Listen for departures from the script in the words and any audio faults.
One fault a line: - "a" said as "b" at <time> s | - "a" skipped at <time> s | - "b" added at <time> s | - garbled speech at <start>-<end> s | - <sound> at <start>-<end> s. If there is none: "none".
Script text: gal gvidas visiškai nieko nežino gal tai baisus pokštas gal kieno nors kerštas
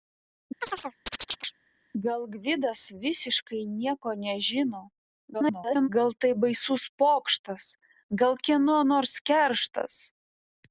- chirp at 0.6-1.5 s
- garbled speech at 5.3-5.9 s